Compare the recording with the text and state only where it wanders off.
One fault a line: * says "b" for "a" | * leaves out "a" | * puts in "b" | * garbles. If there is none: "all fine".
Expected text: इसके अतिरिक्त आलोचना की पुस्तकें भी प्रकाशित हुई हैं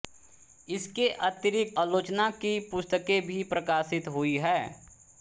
all fine